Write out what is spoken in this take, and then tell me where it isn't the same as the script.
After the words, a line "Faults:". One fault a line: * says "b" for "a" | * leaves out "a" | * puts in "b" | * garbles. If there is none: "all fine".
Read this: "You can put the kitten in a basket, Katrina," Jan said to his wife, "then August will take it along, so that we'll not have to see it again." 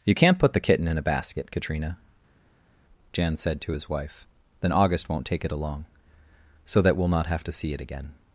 "You can't put the kitten in a basket, Katrina," Jan said to his wife, "then August won't take it along, so that we'll not have to see it again."
Faults:
* says "can't" for "can"
* says "won't" for "will"